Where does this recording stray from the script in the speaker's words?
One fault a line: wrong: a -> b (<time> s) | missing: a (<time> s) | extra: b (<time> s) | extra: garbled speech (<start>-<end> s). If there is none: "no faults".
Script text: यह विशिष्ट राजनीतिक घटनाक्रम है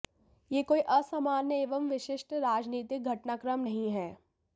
extra: कोई असामान्य एवं (0.7 s)
extra: नहीं (3.6 s)